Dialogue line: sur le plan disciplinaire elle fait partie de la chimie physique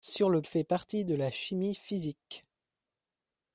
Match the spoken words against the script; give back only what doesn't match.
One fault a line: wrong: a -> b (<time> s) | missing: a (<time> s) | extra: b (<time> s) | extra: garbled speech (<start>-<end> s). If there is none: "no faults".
missing: plan disciplinaire elle (0.4 s)